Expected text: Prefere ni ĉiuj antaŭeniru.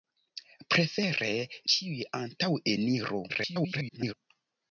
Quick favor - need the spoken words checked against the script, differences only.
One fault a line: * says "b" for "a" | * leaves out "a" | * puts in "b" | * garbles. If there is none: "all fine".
* leaves out "ni"
* garbles